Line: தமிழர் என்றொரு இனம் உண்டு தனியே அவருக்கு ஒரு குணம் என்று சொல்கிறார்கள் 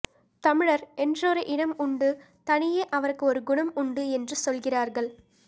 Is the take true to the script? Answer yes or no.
no